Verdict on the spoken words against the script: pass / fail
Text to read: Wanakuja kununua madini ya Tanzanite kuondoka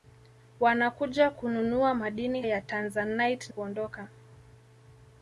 pass